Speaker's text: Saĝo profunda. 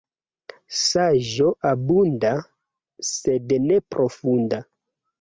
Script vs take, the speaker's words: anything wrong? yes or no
yes